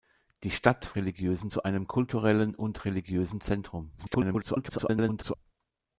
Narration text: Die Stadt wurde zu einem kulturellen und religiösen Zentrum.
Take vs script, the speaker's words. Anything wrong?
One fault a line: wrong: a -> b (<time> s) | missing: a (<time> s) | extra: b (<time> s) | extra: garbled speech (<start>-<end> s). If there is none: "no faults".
wrong: wurde -> religiösen (1.0 s)
extra: garbled speech (4.0-5.3 s)